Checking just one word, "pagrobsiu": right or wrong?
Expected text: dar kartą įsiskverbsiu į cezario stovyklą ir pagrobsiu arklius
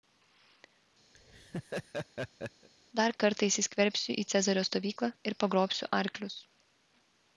right